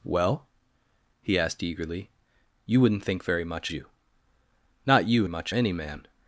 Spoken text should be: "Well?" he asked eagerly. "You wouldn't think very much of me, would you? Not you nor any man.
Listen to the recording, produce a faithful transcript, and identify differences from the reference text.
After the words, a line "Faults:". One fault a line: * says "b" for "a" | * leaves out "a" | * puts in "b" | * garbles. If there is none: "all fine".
"Well?" he asked eagerly. "You wouldn't think very much you? Not you much any man.
Faults:
* leaves out "of me would"
* says "much" for "nor"